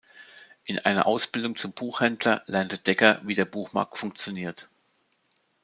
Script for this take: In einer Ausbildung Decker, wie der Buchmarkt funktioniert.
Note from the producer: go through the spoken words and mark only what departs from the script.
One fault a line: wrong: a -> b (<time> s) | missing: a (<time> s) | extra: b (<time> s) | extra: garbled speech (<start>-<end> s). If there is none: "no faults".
extra: zum Buchhändler lernte (1.6 s)